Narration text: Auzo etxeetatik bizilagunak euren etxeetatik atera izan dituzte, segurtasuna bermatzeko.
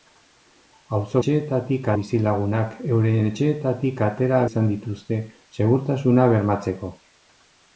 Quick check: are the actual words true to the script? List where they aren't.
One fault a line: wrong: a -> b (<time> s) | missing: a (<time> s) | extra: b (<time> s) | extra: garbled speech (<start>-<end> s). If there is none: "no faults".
no faults